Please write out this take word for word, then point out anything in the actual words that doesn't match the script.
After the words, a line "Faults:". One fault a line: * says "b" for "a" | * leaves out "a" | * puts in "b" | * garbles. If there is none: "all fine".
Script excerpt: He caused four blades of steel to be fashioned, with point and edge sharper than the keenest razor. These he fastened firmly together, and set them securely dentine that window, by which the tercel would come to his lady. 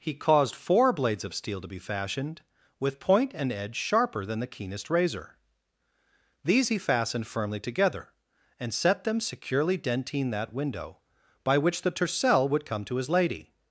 He caused four blades of steel to be fashioned, with point and edge sharper than the keenest razor. These he fastened firmly together, and set them securely dentine that window, by which the tercel would come to his lady.
Faults:
all fine